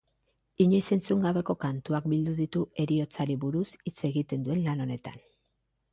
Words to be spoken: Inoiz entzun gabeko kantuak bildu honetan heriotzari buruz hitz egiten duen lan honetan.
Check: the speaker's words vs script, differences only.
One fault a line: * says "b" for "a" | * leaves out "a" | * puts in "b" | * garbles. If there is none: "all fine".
* says "ditu" for "honetan"